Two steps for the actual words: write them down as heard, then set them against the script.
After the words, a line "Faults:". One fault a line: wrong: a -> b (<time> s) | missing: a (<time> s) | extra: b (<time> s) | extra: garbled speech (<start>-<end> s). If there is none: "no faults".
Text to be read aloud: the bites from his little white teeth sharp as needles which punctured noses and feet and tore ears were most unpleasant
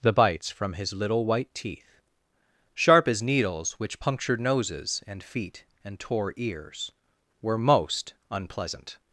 the bites from his little white teeth sharp as needles which punctured noses and feet and tore ears were most unpleasant
Faults:
no faults